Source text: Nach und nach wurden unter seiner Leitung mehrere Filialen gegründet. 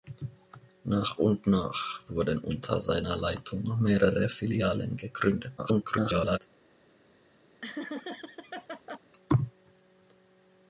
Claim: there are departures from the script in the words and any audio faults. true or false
true